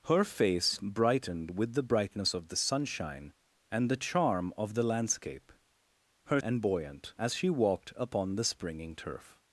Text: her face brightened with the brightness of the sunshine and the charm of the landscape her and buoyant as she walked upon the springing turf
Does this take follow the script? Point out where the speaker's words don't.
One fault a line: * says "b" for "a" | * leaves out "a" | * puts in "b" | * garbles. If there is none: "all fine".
all fine